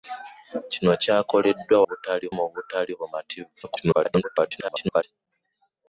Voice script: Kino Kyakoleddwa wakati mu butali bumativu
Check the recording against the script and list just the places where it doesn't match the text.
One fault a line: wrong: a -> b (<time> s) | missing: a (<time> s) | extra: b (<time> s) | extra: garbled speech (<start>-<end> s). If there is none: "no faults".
wrong: wakati -> butali (1.9 s)
extra: garbled speech (3.6-5.0 s)